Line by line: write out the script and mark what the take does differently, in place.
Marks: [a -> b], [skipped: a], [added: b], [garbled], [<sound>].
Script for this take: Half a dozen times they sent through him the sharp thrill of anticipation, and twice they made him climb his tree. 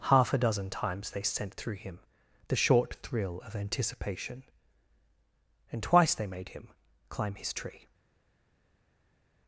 Half a dozen times they sent through him the [sharp -> short] thrill of anticipation, and twice they made him climb his tree.